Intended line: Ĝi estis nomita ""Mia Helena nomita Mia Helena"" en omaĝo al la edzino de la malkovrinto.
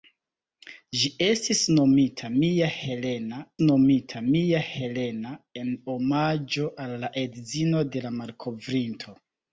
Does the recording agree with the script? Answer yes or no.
yes